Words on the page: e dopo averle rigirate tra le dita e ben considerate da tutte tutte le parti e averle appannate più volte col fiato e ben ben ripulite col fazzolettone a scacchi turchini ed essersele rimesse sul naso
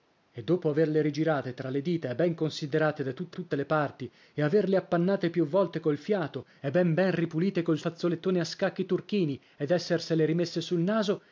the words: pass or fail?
pass